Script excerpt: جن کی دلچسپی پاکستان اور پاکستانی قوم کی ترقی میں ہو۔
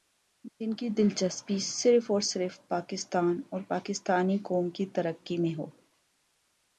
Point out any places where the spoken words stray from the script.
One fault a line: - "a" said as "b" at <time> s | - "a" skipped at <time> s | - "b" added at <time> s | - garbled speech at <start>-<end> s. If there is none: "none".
- "صرف اور صرف" added at 1.6 s